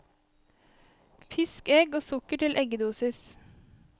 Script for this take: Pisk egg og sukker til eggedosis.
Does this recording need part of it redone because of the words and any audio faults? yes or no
no